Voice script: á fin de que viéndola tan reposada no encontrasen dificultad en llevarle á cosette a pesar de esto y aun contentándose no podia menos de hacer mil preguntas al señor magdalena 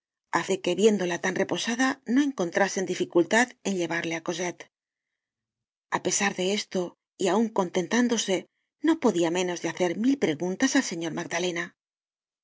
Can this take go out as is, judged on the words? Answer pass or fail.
fail